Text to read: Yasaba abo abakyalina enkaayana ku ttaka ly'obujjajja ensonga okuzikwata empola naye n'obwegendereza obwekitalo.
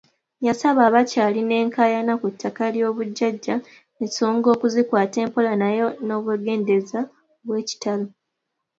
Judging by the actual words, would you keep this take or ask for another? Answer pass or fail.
fail